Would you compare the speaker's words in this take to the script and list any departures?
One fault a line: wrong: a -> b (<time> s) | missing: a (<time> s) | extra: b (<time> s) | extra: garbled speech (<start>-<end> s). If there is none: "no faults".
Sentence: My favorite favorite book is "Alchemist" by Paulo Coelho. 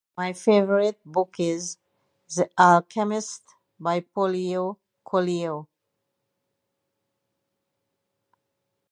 missing: favorite (1.0 s)
extra: The (2.4 s)